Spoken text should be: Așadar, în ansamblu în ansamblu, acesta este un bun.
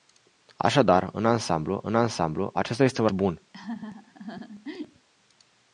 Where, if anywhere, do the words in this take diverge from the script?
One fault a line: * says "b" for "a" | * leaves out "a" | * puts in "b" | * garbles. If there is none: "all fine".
all fine